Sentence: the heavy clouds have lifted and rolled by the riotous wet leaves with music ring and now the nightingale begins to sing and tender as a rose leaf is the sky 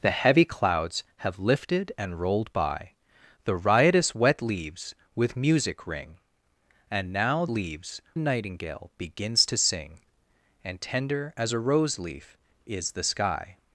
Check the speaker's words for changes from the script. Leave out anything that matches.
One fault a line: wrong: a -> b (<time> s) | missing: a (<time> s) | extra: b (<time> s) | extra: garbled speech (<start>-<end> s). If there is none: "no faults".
wrong: the -> leaves (7.5 s)